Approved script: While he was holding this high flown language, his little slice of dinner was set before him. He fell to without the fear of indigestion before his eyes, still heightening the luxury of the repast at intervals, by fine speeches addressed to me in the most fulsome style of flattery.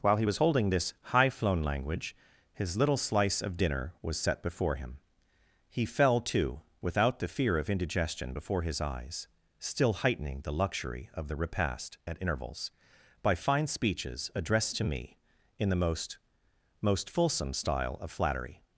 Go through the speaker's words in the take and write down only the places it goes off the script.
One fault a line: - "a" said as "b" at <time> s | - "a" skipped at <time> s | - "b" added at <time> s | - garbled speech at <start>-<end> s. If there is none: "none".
- "most" added at 16.8 s